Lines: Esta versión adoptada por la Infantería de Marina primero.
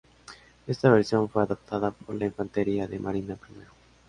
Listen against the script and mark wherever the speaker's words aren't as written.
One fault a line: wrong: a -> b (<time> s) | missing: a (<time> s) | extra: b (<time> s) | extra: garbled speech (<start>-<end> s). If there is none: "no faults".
extra: fue (1.3 s)